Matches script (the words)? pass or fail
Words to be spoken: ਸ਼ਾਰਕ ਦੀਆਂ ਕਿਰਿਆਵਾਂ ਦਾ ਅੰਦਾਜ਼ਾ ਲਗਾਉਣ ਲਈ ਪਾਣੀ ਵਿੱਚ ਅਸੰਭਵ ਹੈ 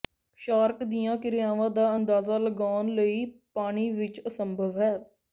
pass